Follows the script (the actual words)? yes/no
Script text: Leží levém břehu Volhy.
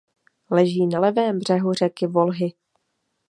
no